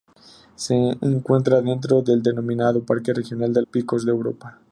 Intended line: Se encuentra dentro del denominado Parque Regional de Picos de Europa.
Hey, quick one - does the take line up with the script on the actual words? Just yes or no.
yes